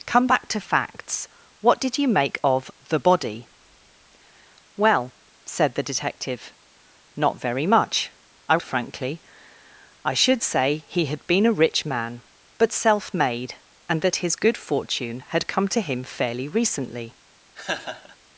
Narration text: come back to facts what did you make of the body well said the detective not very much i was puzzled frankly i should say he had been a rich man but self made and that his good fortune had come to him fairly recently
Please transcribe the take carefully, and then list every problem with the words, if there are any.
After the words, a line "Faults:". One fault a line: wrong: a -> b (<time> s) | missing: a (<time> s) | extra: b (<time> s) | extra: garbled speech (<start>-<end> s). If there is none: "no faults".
come back to facts what did you make of the body well said the detective not very much i frankly i should say he had been a rich man but self made and that his good fortune had come to him fairly recently
Faults:
missing: was puzzled (8.6 s)